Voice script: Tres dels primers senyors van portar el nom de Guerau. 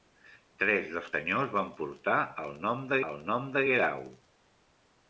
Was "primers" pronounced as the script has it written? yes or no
no